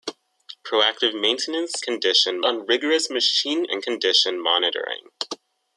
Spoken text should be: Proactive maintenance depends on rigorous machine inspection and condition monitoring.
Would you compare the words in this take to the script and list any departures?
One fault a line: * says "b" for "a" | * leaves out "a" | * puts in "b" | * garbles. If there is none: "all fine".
* says "condition" for "depends"
* leaves out "inspection"